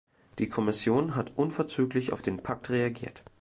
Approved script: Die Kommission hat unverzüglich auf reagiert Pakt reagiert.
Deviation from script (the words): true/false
true